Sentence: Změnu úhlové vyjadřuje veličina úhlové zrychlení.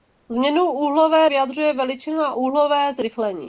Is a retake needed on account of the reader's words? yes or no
no